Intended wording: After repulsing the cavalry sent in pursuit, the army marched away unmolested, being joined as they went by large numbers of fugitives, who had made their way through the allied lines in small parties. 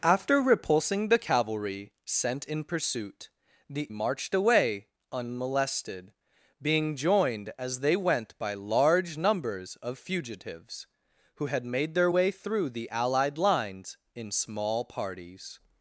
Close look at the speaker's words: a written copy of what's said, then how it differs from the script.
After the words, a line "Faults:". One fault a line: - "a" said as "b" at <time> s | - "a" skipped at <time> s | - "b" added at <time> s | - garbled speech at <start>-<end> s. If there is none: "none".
After repulsing the cavalry sent in pursuit, the marched away unmolested, being joined as they went by large numbers of fugitives, who had made their way through the allied lines in small parties.
Faults:
- "army" skipped at 3.9 s